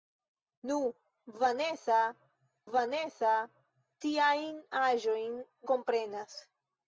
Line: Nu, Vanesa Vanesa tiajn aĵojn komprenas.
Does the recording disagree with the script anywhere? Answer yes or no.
no